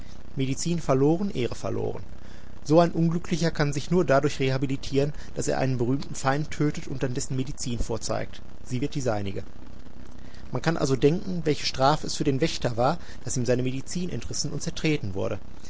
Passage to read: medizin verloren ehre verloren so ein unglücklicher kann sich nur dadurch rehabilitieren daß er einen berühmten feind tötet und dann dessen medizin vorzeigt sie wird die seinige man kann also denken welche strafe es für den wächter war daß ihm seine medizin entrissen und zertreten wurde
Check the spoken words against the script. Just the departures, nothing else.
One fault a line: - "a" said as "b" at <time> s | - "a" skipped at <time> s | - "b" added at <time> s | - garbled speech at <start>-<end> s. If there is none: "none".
none